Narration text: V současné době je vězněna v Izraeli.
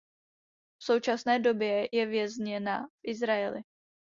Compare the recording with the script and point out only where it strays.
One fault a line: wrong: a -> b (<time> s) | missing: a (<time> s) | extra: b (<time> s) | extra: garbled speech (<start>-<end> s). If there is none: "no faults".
no faults